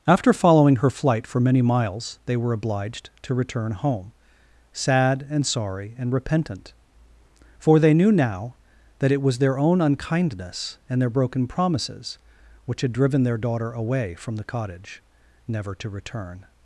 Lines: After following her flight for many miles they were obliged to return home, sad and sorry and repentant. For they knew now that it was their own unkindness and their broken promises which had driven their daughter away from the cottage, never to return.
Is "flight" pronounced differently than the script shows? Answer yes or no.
no